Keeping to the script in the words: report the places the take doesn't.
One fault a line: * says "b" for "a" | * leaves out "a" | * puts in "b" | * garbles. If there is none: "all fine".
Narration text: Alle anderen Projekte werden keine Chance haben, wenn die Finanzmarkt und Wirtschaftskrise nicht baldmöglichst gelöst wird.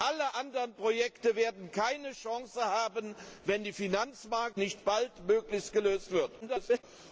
* leaves out "und Wirtschaftskrise"
* garbles